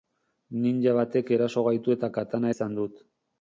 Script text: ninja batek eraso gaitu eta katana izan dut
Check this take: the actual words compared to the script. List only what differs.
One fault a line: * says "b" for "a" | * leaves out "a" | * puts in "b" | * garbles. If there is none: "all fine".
all fine